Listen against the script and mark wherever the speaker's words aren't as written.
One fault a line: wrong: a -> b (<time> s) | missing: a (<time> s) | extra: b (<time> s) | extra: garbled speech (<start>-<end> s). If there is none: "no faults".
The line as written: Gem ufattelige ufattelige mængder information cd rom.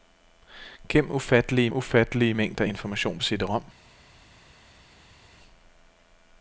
no faults